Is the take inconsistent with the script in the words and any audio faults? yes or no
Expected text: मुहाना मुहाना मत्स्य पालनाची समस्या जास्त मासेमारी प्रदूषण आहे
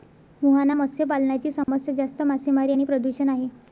yes